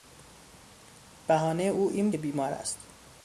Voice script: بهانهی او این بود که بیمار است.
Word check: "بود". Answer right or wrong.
wrong